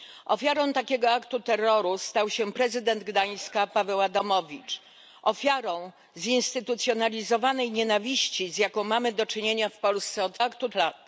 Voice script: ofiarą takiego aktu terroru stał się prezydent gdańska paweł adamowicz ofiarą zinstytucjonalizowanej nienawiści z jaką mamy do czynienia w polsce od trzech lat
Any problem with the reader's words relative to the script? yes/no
yes